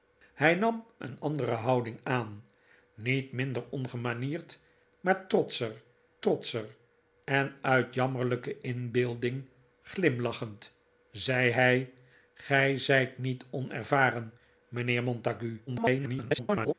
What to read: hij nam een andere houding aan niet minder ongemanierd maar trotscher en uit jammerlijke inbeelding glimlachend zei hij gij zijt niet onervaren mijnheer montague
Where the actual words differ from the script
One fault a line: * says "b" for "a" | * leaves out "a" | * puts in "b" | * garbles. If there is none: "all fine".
* puts in "trotscher"
* garbles